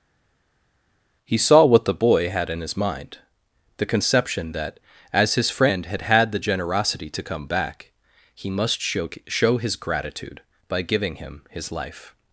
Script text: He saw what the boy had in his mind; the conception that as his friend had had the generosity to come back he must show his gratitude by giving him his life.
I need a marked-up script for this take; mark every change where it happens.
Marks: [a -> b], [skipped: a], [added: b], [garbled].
He saw what the boy had in his mind; the conception that as his friend had had the generosity to come back he must show [added: show] his gratitude by giving him his life.